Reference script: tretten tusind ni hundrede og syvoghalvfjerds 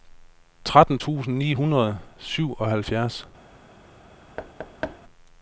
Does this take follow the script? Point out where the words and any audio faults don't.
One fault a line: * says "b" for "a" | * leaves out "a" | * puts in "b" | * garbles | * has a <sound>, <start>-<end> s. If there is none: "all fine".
* has a thud, 4.4-5.0 s